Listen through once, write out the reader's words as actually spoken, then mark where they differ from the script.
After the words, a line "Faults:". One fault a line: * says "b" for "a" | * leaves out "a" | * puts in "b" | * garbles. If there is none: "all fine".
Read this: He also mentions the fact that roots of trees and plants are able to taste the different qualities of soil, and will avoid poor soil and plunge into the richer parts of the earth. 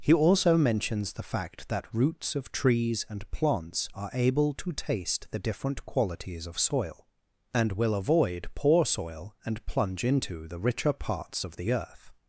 He also mentions the fact that roots of trees and plants are able to taste the different qualities of soil, and will avoid poor soil and plunge into the richer parts of the earth.
Faults:
all fine